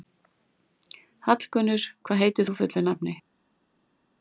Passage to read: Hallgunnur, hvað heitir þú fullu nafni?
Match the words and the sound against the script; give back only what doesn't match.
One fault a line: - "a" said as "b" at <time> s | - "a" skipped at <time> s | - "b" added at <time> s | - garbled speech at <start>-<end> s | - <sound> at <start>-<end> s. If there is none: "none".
none